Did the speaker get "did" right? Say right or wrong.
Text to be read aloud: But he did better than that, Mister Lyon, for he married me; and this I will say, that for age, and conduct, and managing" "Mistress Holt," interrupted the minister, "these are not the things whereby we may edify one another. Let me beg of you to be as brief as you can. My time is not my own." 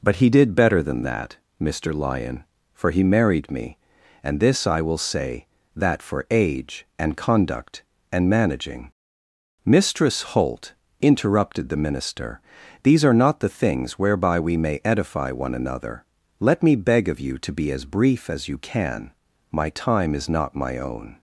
right